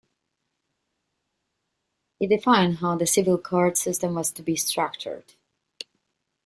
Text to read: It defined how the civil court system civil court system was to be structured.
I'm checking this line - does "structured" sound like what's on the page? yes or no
yes